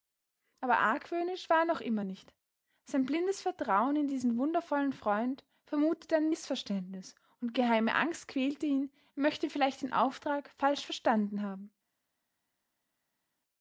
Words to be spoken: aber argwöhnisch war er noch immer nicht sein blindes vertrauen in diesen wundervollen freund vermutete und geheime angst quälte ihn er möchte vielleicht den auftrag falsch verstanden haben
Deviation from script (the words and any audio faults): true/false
true